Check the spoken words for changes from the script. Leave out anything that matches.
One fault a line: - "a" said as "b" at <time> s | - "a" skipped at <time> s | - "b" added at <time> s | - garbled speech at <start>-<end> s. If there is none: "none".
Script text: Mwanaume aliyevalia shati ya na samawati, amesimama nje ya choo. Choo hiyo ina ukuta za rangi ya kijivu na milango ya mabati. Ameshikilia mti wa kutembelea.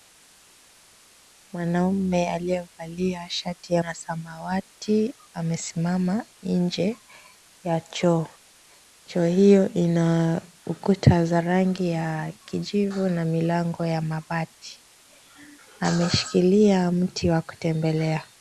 none